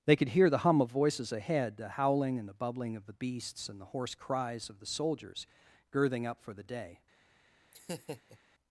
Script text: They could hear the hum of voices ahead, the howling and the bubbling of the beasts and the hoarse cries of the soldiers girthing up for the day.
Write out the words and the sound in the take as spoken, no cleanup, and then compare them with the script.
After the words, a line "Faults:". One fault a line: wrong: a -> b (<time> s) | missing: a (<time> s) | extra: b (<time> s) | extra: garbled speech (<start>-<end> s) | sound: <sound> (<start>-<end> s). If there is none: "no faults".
They could hear the hum of voices ahead, the howling and the bubbling of the beasts and the hoarse cries of the soldiers girthing up for the day.
Faults:
sound: laugh (7.7-8.4 s)